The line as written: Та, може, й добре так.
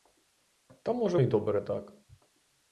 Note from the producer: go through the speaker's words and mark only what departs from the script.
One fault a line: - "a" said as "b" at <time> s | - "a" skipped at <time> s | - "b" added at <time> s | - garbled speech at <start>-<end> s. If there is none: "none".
none